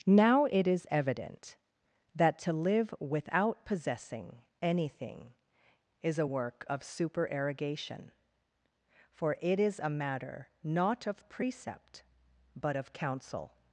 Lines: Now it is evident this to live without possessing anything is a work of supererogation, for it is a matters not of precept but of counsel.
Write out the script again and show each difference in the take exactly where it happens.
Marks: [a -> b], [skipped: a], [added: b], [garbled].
Now it is evident [this -> that] to live without possessing anything is a work of supererogation, for it is a [matters -> matter] not of precept but of counsel.